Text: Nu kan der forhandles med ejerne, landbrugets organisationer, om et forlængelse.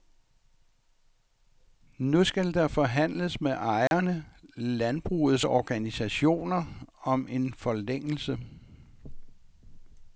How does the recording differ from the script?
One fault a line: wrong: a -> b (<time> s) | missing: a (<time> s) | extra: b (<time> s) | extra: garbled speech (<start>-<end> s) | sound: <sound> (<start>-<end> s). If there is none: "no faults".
wrong: kan -> skal (2.2 s)
sound: dropout (3.9-3.9 s)
wrong: et -> en (7.3 s)